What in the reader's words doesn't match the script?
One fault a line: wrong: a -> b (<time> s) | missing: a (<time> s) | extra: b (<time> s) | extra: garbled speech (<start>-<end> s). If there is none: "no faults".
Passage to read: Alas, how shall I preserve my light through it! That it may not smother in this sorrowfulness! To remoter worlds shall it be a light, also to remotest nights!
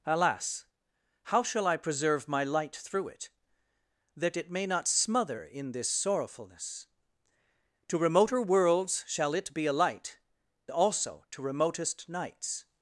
no faults